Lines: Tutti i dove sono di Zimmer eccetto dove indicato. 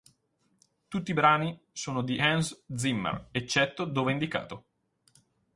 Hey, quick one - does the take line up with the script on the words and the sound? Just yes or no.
no